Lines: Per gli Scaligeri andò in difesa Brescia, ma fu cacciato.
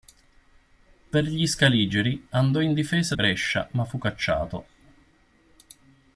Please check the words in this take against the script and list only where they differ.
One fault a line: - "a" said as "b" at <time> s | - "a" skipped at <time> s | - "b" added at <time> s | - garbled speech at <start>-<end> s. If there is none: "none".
none